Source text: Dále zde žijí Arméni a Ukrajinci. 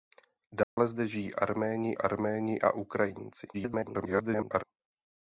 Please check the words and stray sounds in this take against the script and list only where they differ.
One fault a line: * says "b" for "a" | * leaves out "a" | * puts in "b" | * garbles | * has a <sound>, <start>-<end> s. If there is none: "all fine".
* has a dropout, 0.6-0.8 s
* puts in "Arméni"
* garbles